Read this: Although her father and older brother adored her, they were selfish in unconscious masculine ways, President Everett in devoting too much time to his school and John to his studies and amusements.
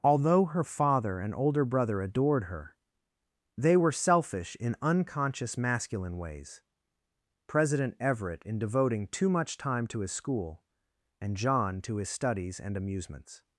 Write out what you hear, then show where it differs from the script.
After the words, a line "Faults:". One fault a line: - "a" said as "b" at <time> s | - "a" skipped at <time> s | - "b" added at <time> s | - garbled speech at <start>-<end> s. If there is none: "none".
Although her father and older brother adored her, they were selfish in unconscious masculine ways, President Everett in devoting too much time to his school and John to his studies and amusements.
Faults:
none